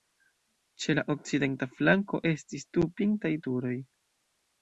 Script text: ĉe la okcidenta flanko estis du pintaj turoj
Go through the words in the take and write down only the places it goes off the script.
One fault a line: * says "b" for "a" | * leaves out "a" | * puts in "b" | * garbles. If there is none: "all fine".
all fine